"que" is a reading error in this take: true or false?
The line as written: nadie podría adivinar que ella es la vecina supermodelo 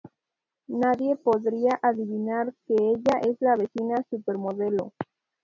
false